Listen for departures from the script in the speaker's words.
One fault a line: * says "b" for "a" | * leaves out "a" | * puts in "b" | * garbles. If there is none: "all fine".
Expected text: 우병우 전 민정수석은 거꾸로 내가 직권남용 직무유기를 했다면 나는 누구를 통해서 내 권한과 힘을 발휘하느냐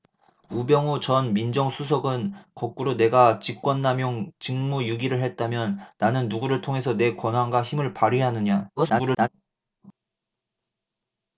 * garbles